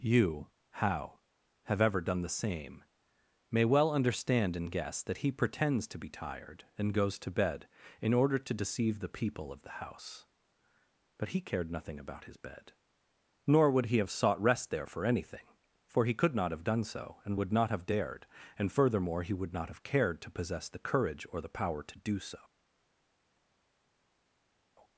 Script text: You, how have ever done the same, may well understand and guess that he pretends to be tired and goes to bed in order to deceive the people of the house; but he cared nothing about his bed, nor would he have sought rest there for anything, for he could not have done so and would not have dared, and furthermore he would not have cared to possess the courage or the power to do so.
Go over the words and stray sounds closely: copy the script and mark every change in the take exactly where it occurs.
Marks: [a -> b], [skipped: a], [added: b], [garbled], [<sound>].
You, how have ever done the same, may well understand and guess that he pretends to be tired and goes to bed in order to deceive the people of the house; but he cared nothing about his bed, nor would he have sought rest there for anything, for he could not have done so and would not have dared, and furthermore he would not have cared to possess the courage or the power to do so.